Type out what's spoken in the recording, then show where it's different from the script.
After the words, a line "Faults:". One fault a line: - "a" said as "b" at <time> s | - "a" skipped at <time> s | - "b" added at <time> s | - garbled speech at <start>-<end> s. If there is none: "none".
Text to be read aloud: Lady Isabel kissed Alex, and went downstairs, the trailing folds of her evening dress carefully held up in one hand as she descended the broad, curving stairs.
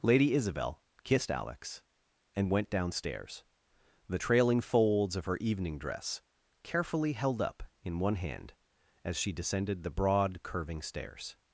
Lady Isabel kissed Alex, and went downstairs, the trailing folds of her evening dress carefully held up in one hand as she descended the broad, curving stairs.
Faults:
none